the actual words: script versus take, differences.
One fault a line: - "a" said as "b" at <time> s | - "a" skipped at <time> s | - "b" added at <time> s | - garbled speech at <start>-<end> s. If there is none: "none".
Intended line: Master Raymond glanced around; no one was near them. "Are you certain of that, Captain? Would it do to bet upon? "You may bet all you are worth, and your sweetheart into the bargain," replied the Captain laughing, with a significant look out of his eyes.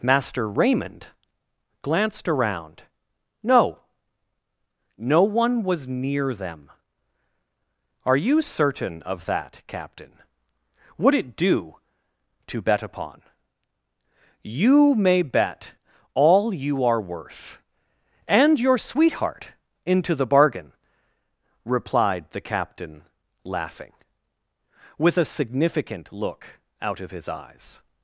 - "no" added at 5.0 s